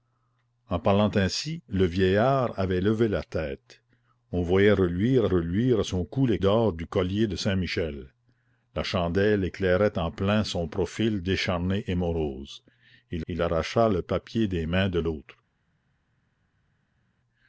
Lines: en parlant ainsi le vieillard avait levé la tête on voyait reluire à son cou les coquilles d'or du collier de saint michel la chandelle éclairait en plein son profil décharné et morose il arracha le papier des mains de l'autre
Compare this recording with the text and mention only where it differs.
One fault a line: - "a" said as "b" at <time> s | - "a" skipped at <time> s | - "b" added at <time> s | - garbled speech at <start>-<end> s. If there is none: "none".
- "reluire" added at 5.2 s
- "coquilles" skipped at 6.4 s
- "il" added at 13.3 s